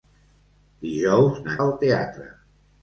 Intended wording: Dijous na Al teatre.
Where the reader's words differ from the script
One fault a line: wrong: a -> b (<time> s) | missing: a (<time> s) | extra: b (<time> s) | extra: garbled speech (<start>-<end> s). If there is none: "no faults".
no faults